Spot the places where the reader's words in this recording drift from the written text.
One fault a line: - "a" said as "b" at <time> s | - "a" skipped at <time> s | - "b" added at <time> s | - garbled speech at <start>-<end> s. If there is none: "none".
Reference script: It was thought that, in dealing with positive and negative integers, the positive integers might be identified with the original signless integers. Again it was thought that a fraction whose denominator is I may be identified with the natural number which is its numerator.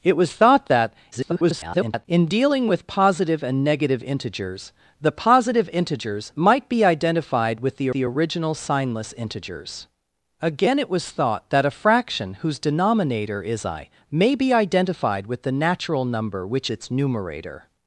- garbled speech at 1.1-2.1 s
- "the" added at 7.9 s
- "is" skipped at 16.7 s